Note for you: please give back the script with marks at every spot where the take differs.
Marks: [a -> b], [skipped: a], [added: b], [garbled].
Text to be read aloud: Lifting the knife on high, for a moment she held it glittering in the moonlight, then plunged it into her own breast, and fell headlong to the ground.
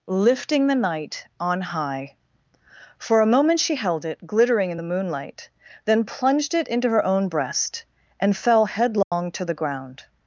Lifting the [knife -> night] on high, for a moment she held it glittering in the moonlight, then plunged it into her own breast, and fell headlong to the ground.